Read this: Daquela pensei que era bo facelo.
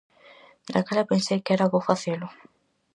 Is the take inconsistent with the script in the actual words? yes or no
no